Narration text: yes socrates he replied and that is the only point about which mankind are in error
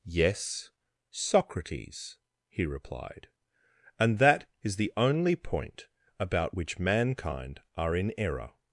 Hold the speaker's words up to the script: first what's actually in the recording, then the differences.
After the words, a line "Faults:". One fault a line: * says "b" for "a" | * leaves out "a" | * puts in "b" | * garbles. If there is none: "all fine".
yes socrates he replied and that is the only point about which mankind are in error
Faults:
all fine